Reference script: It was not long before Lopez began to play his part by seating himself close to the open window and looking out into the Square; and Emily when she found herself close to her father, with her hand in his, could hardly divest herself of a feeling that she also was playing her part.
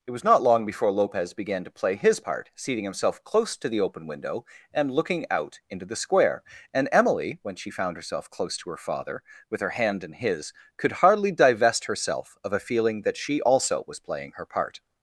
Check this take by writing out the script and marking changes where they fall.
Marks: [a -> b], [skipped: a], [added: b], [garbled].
It was not long before Lopez began to play his part [skipped: by] seating himself close to the open window and looking out into the Square; and Emily when she found herself close to her father, with her hand in his, could hardly divest herself of a feeling that she also was playing her part.